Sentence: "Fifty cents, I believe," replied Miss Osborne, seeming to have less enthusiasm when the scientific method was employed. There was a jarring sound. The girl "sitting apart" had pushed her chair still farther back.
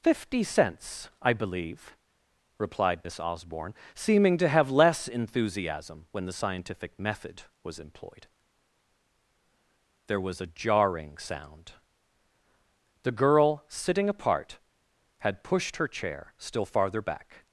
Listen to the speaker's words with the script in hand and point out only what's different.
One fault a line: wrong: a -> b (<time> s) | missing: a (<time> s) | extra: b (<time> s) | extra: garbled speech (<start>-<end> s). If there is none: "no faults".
no faults